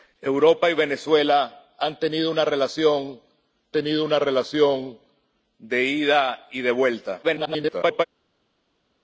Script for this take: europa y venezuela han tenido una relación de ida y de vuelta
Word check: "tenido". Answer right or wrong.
right